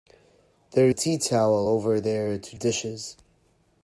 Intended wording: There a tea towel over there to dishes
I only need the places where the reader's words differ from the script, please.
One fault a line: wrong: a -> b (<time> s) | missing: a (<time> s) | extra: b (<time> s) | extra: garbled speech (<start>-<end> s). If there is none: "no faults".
no faults